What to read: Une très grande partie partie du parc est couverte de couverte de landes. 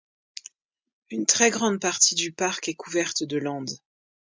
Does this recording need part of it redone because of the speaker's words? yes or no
yes